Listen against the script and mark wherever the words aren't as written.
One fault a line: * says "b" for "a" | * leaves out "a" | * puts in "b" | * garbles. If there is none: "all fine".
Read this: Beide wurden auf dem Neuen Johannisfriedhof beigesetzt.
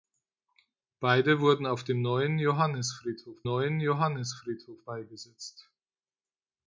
* puts in "Neuen Johannisfriedhof"